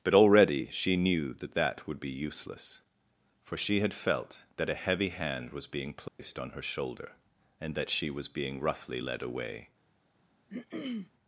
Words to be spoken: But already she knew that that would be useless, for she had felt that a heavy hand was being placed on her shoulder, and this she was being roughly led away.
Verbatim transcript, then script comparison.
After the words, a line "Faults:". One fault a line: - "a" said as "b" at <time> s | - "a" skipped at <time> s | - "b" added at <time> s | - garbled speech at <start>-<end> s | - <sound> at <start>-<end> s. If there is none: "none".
But already she knew that that would be useless, for she had felt that a heavy hand was being placed on her shoulder, and that she was being roughly led away.
Faults:
- dropout at 6.1-6.2 s
- "this" said as "that" at 7.8 s
- throat clearing at 10.5-11.1 s